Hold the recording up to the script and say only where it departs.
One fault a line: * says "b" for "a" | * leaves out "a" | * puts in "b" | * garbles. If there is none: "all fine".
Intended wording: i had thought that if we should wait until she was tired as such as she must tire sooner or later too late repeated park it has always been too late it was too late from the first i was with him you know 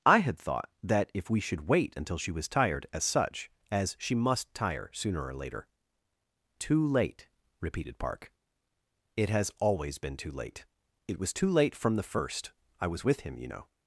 all fine